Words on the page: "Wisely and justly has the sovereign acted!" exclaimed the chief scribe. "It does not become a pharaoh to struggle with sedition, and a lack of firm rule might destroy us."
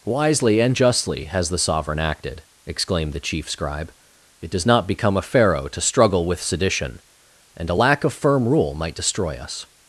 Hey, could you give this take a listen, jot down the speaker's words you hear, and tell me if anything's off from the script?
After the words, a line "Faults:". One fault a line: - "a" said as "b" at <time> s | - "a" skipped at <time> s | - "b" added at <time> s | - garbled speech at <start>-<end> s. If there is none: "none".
"Wisely and justly has the sovereign acted!" exclaimed the chief scribe. "It does not become a pharaoh to struggle with sedition, and a lack of firm rule might destroy us."
Faults:
none